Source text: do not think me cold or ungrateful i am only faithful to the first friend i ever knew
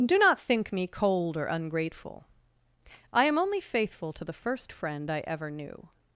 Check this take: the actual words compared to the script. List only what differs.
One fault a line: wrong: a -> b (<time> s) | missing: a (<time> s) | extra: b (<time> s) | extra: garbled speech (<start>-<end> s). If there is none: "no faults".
no faults